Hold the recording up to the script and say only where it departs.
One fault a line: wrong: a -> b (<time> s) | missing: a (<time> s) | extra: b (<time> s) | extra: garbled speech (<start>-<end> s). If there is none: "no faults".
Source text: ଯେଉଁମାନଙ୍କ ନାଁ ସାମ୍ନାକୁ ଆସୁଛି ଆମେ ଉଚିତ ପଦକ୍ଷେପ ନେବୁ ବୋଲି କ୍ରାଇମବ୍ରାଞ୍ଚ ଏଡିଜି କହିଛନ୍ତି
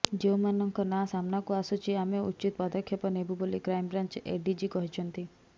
no faults